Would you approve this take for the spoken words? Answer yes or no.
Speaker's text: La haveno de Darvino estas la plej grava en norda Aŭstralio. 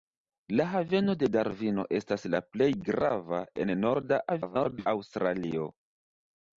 no